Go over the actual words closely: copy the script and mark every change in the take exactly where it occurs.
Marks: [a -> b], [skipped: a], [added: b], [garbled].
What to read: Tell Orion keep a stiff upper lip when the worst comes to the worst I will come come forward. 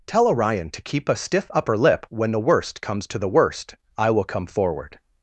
Tell Orion [added: to] keep a stiff upper lip when the worst comes to the worst I will come [skipped: come] forward.